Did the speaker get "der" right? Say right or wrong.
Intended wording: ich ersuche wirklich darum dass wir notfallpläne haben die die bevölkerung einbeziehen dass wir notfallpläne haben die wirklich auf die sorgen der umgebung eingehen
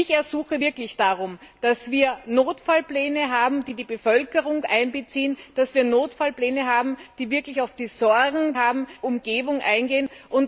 wrong